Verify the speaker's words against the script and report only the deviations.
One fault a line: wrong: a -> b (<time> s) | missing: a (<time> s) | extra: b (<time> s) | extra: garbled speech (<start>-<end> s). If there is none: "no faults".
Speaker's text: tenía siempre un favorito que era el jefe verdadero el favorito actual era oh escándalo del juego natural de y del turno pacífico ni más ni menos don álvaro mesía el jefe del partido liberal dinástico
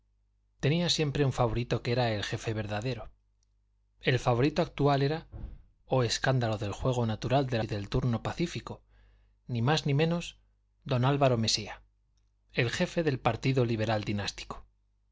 no faults